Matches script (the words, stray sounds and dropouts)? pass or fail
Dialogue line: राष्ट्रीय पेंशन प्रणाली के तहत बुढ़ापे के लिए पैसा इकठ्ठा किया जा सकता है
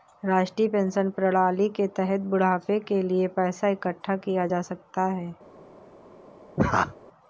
fail